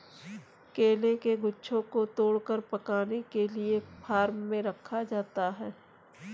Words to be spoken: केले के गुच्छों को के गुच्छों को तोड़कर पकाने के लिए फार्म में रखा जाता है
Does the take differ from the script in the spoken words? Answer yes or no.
yes